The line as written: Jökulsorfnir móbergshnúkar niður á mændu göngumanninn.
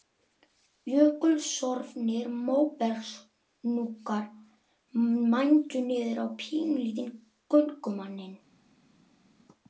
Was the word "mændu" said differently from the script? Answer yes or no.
yes